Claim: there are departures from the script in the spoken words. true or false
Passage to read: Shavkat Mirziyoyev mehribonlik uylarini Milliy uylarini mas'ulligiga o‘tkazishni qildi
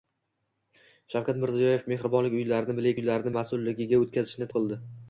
false